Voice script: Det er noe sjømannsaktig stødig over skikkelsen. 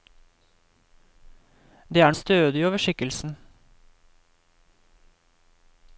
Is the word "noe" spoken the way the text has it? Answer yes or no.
no